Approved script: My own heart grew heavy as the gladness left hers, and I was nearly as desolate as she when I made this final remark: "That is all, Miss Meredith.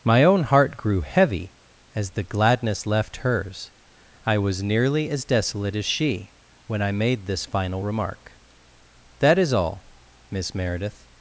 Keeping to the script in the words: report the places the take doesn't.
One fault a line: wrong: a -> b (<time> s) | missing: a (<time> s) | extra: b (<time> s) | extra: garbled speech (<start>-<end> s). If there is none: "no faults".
missing: and (3.7 s)